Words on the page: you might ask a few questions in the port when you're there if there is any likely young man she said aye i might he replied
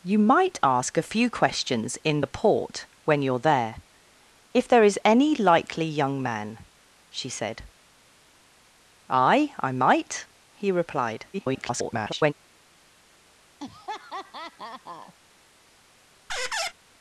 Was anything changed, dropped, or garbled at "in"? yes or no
no